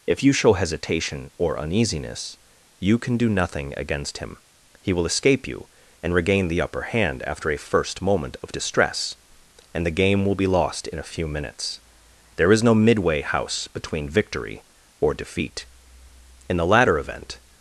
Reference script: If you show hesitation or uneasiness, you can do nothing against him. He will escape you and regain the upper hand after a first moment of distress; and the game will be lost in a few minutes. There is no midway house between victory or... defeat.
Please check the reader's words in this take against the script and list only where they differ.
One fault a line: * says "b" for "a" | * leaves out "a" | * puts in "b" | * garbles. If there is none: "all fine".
* puts in "In the latter event"